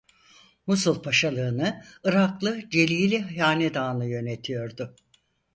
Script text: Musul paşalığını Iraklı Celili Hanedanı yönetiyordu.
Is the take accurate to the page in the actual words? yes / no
yes